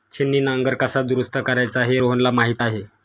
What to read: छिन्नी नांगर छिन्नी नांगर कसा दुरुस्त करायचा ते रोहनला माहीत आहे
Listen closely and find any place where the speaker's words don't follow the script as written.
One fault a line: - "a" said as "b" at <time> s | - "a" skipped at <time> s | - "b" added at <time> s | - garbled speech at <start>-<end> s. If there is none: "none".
- "छिन्नी नांगर" skipped at 0.8 s
- "ते" said as "हे" at 1.8 s